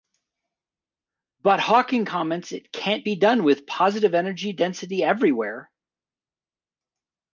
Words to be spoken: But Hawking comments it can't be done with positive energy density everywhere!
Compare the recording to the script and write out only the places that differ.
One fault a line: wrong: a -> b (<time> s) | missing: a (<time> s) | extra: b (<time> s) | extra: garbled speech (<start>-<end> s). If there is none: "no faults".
no faults